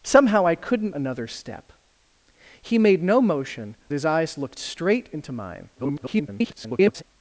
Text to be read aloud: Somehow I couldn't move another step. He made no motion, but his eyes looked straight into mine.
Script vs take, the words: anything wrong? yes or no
yes